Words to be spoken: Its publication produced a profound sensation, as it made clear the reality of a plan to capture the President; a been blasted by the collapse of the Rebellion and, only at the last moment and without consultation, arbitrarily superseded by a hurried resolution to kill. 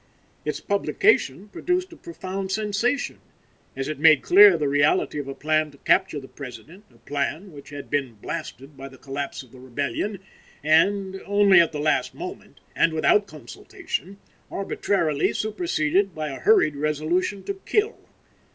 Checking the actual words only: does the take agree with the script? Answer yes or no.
no